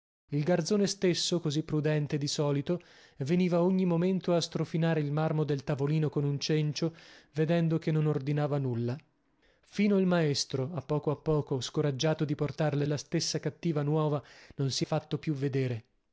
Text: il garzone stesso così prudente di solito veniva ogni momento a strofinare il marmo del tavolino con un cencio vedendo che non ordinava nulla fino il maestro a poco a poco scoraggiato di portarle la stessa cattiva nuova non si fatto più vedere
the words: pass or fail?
pass